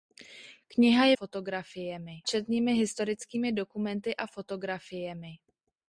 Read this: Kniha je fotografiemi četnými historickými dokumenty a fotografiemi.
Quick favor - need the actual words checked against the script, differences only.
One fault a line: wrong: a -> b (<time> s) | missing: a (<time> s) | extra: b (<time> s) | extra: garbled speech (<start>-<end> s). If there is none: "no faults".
no faults